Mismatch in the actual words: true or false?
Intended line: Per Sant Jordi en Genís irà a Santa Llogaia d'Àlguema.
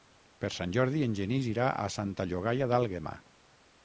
false